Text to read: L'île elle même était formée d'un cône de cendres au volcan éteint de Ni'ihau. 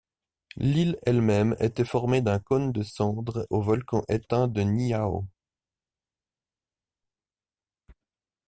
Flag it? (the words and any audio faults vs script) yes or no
no